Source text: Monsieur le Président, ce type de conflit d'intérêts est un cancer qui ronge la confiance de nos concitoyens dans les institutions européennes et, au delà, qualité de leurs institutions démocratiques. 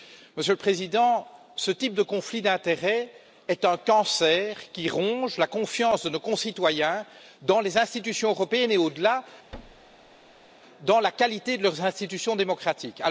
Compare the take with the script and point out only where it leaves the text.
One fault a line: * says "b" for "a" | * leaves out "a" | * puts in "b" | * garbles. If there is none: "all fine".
* puts in "dans la"